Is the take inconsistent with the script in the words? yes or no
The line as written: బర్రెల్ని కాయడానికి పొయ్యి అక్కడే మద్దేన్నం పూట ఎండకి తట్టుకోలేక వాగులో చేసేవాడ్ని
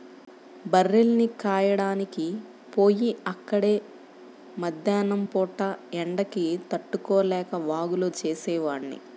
no